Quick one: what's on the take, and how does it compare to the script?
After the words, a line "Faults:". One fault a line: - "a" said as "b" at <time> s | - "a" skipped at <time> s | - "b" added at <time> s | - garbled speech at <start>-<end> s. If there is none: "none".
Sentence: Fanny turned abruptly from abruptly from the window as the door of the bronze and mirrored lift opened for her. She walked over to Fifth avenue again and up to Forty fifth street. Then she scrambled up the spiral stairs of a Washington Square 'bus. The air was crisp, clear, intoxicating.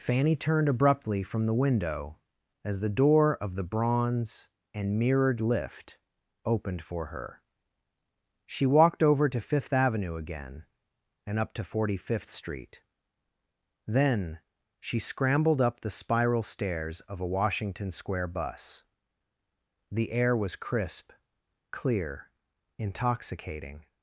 Fanny turned abruptly from the window as the door of the bronze and mirrored lift opened for her. She walked over to Fifth avenue again and up to Forty fifth street. Then she scrambled up the spiral stairs of a Washington Square 'bus. The air was crisp, clear, intoxicating.
Faults:
- "abruptly from" skipped at 1.4 s